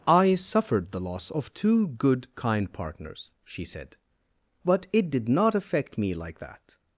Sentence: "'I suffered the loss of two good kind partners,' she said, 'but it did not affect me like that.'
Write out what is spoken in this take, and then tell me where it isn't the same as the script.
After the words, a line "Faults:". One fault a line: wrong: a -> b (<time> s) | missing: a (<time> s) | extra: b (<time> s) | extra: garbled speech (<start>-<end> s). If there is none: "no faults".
"'I suffered the loss of two good kind partners,' she said, 'but it did not affect me like that.'
Faults:
no faults